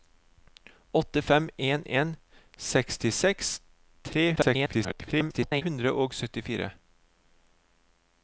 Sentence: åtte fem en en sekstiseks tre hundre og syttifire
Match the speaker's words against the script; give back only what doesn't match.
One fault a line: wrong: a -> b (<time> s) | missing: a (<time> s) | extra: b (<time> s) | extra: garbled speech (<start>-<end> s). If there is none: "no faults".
extra: garbled speech (4.4-5.6 s)